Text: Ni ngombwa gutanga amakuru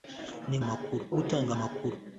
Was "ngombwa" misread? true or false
true